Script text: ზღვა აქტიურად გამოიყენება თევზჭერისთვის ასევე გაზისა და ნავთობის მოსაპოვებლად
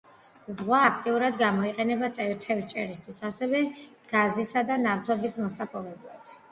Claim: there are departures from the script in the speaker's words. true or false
false